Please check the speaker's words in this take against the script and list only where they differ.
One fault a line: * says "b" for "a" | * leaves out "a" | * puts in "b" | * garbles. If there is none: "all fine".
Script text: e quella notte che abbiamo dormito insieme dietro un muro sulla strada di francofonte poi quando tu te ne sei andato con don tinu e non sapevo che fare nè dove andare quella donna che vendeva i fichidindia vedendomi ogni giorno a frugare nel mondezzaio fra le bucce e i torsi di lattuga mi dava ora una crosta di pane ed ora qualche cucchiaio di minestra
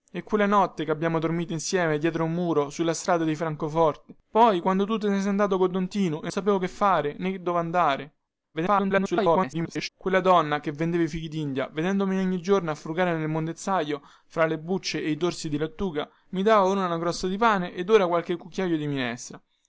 * leaves out "non"
* garbles